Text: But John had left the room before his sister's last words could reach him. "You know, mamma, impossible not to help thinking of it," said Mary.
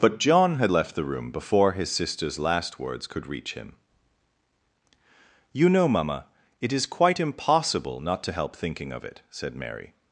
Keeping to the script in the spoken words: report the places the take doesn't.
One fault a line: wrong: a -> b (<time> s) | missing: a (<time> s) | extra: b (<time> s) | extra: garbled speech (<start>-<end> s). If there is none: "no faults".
extra: it is quite (6.6 s)